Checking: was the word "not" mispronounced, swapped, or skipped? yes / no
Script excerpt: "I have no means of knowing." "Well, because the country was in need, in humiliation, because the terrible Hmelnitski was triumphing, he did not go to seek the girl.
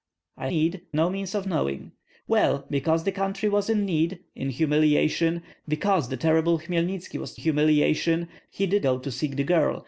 yes